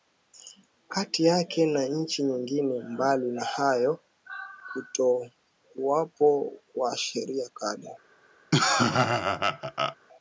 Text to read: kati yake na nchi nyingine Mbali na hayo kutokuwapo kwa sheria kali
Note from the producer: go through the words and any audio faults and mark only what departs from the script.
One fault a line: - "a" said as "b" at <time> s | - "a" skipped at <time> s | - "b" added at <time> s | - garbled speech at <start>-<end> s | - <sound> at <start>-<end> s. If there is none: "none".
- laugh at 8.5-10.0 s